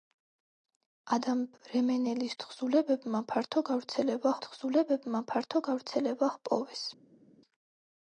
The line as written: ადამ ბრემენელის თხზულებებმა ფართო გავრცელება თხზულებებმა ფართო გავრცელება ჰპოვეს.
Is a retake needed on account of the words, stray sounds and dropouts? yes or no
no